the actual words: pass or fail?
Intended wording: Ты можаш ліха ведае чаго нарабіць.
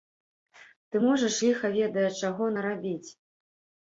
pass